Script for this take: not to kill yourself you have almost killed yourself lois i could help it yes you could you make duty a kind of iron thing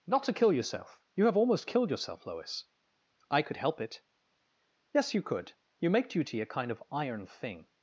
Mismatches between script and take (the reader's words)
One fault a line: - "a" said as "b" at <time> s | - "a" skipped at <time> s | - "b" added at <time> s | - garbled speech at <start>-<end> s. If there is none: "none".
none